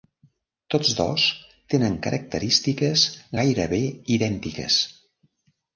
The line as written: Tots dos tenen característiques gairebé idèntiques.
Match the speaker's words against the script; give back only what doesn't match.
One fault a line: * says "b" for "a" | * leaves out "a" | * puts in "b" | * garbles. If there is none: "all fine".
all fine